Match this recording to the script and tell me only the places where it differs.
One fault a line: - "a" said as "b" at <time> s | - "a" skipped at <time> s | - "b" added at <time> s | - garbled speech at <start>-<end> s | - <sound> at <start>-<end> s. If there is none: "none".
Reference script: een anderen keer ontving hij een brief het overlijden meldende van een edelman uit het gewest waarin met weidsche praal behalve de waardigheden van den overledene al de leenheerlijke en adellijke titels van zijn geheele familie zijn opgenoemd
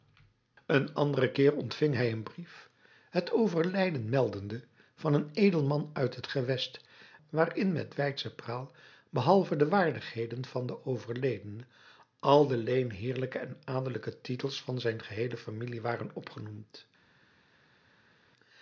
- "zijn" said as "waren" at 15.8 s